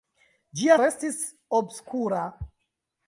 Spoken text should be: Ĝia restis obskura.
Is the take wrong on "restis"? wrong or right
right